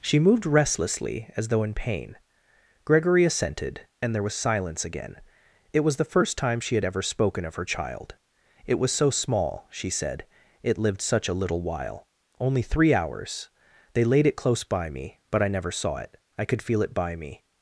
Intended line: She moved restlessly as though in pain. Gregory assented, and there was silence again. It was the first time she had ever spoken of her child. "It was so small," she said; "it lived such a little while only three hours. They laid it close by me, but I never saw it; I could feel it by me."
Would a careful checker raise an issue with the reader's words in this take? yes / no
no